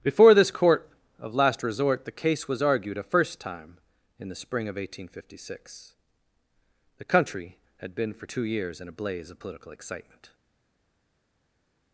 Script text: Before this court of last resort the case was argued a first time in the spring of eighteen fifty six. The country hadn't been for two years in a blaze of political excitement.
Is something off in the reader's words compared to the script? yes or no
yes